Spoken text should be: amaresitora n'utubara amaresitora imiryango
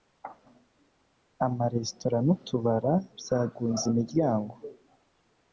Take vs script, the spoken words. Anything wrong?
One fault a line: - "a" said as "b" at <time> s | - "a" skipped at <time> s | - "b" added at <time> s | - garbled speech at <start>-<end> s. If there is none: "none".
- "amaresitora" said as "byagunze" at 3.2 s